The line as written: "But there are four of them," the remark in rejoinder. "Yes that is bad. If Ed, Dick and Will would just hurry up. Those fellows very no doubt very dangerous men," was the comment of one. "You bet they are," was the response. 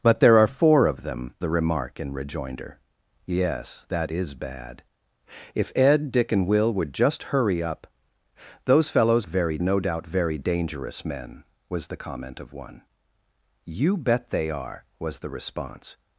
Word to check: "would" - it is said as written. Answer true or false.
true